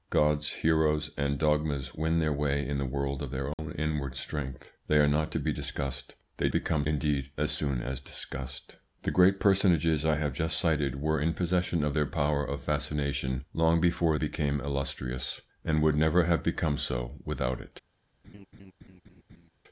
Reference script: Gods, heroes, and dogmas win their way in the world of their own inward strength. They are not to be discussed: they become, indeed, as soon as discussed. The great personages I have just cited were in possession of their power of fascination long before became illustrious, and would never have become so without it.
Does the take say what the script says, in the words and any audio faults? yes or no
no